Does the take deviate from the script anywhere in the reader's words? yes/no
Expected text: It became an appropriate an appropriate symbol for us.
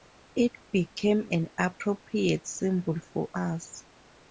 yes